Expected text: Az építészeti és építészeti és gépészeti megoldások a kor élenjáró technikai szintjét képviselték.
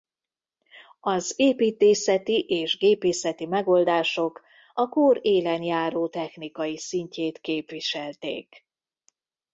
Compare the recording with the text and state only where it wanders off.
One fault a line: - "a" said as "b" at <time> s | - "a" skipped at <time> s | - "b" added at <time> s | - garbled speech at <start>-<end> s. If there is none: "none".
- "építészeti és" skipped at 2.8 s